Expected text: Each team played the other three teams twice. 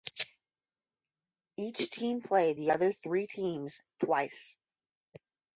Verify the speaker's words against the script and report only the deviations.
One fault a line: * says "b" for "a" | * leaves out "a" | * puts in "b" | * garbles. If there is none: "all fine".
all fine